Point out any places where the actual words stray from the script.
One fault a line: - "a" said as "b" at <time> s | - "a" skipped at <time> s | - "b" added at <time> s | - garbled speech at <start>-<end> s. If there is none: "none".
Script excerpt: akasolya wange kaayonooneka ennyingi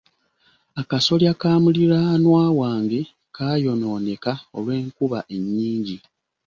- "ka muliraanwa" added at 1.4 s
- "olw'enkuba" added at 4.6 s